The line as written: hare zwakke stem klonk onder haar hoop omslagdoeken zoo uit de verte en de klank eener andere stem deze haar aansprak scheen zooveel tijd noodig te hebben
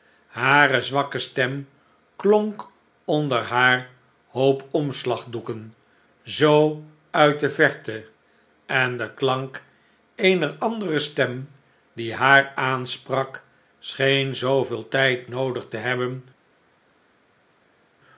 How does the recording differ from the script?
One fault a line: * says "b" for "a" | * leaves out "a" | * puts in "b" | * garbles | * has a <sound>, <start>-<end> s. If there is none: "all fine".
* says "die" for "deze"